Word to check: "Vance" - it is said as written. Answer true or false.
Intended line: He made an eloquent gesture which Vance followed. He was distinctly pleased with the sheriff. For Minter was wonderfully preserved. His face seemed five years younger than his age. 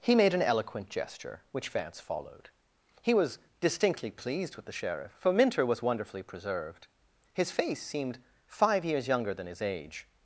true